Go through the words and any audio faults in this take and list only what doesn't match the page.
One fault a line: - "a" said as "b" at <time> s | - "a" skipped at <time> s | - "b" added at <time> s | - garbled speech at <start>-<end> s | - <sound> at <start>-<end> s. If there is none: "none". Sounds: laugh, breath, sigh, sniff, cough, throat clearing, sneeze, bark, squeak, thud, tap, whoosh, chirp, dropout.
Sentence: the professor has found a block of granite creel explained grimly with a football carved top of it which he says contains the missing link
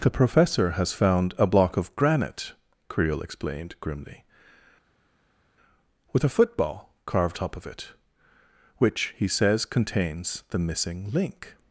none